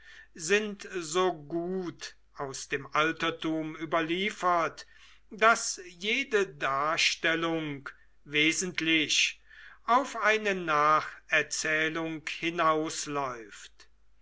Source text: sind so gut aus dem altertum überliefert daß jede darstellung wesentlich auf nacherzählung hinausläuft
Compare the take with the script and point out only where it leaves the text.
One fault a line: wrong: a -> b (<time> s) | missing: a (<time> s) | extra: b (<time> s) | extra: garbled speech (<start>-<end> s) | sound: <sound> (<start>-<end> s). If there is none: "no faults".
extra: eine (10.2 s)